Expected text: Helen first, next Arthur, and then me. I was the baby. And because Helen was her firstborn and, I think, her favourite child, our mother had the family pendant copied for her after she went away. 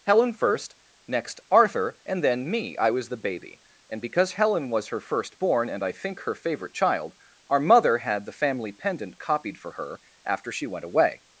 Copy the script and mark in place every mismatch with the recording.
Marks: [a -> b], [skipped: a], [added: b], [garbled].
Helen first, next Arthur, and then me. I was the baby. And because Helen was her firstborn and, I think, her favourite child, our mother had the family pendant copied for her after she went away.